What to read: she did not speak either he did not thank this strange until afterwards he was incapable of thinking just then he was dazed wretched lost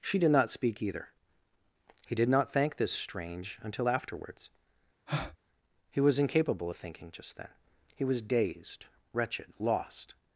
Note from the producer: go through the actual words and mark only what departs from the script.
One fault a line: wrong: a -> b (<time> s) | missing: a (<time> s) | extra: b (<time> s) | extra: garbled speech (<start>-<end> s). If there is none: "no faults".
no faults